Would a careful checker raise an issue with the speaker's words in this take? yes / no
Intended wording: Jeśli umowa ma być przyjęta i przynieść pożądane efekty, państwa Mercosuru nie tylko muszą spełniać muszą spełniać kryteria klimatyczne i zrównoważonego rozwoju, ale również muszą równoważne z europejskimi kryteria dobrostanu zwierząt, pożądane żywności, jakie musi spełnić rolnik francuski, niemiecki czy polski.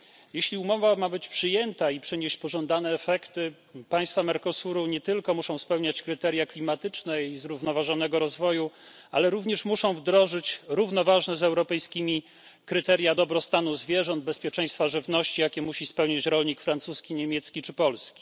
yes